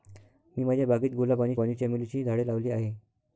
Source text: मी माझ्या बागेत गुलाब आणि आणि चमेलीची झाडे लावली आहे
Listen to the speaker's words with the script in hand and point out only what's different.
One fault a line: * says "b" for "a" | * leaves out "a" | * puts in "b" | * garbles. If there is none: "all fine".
all fine